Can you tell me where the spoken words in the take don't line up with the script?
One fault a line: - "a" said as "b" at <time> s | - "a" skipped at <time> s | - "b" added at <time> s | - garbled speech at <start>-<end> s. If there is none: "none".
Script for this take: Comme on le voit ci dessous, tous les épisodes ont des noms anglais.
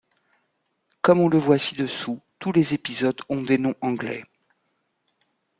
none